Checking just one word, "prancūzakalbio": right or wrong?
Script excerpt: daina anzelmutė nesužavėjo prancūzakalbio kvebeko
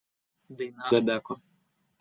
wrong